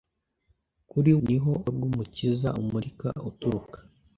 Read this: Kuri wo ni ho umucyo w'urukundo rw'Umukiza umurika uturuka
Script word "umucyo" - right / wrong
wrong